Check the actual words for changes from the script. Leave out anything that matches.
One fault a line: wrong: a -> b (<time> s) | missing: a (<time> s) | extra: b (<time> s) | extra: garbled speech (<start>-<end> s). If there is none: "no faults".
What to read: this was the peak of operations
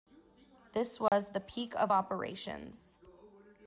no faults